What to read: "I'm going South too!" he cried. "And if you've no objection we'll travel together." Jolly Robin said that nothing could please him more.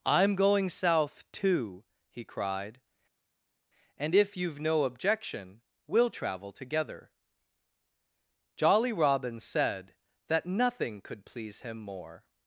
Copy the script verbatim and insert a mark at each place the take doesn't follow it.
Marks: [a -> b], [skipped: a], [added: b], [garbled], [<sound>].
"I'm going South too!" he cried. "And if you've no objection we'll travel together." Jolly Robin said that nothing could please him more.